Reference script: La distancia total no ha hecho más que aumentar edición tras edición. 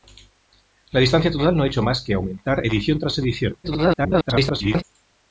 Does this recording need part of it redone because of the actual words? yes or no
yes